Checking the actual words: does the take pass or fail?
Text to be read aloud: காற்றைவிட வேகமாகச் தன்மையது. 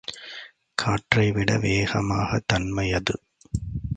pass